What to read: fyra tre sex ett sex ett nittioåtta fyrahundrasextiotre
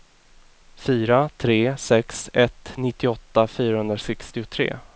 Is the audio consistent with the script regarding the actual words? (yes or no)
no